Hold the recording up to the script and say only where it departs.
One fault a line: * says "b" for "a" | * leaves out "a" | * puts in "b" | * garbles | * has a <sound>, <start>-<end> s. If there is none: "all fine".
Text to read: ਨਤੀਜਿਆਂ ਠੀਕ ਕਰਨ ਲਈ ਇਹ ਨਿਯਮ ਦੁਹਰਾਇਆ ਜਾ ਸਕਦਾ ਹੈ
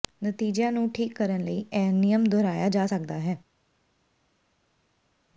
* puts in "ਨੂੰ"